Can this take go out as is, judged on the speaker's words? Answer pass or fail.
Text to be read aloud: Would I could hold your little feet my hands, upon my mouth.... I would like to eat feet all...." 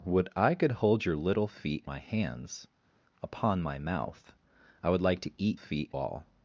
pass